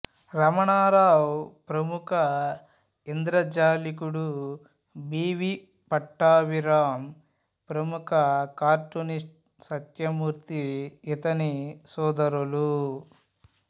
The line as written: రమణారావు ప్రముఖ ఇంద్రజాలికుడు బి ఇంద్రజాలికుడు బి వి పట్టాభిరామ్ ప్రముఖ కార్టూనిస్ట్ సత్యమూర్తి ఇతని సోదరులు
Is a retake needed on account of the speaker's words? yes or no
yes